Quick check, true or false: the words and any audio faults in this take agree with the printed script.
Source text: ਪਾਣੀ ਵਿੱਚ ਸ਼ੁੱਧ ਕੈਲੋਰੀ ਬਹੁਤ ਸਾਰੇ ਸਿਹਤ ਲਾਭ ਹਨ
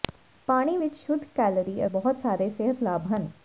true